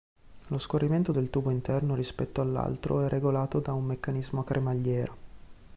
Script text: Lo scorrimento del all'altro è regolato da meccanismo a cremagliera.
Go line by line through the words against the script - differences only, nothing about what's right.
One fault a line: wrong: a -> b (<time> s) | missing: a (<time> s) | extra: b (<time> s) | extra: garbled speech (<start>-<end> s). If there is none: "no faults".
extra: tubo interno rispetto (1.3 s)
extra: un (3.7 s)